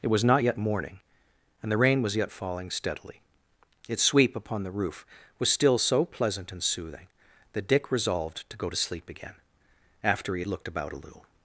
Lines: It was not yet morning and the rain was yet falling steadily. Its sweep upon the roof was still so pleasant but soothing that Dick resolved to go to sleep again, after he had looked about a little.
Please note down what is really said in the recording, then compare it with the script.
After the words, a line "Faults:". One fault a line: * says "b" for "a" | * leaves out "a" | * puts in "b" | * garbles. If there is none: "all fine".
It was not yet morning and the rain was yet falling steadily. Its sweep upon the roof was still so pleasant and soothing that Dick resolved to go to sleep again, after he had looked about a little.
Faults:
* says "and" for "but"